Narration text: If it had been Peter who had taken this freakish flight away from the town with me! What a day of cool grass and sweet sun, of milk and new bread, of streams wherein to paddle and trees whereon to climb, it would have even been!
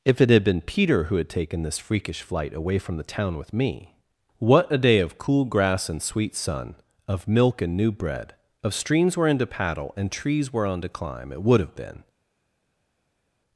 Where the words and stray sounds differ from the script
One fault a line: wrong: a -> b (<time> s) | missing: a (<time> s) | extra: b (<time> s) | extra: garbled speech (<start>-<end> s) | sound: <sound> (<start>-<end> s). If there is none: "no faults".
missing: even (11.8 s)